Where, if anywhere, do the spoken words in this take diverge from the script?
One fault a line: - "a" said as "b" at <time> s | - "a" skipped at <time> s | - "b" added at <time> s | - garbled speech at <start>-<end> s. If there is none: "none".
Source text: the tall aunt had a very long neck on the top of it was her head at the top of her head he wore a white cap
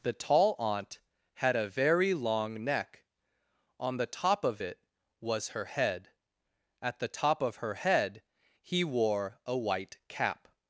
none